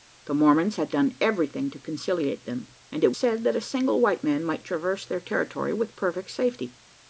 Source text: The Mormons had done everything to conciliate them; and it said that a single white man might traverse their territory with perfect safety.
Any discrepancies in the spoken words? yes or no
no